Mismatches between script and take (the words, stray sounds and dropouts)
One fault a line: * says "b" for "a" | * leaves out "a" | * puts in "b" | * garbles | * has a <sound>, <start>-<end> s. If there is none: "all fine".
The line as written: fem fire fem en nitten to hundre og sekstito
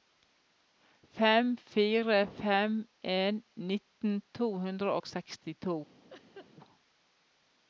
* has a laugh, 6.1-6.5 s